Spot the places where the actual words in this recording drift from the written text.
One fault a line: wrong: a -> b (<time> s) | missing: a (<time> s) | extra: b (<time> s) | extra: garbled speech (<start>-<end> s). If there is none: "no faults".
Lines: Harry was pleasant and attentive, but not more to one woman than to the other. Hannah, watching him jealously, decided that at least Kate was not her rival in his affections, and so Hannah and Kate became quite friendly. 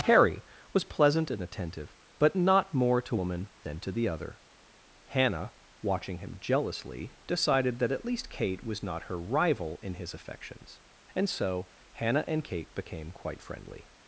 missing: one (3.1 s)